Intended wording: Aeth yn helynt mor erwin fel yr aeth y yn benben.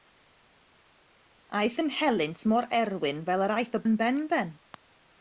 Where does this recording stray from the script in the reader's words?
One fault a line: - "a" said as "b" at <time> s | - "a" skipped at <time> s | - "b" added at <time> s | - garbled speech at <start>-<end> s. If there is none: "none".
none